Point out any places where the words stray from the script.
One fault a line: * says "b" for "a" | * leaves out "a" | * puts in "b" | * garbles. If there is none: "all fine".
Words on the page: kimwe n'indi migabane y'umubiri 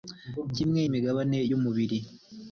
* leaves out "n'indi"